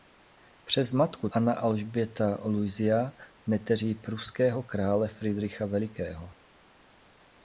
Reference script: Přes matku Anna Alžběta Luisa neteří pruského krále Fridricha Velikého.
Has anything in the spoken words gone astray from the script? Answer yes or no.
no